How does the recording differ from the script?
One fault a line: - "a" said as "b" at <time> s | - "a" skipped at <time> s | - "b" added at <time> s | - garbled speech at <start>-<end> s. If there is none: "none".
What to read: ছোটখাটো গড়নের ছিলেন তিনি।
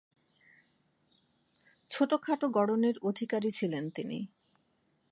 - "অধিকারী" added at 3.0 s